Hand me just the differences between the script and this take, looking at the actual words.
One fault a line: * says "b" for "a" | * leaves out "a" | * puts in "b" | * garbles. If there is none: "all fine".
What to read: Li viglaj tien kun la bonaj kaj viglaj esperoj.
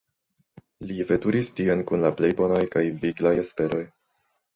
* says "veturis" for "viglaj"
* puts in "plej"